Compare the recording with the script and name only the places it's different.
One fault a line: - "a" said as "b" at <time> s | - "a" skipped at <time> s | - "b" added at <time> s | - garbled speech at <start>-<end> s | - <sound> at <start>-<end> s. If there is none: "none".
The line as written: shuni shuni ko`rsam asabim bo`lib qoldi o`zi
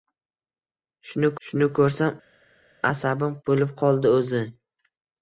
none